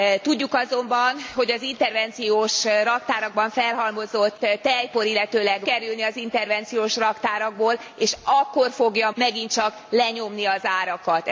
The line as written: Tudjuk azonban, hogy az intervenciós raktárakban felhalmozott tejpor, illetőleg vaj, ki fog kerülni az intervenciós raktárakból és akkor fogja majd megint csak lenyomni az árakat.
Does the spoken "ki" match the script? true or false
false